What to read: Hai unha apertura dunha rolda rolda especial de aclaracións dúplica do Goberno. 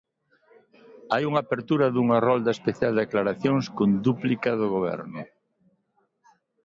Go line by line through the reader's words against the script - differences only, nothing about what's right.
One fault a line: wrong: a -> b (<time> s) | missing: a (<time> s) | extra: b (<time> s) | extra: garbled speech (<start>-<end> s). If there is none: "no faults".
missing: rolda (2.5 s)
extra: con (3.8 s)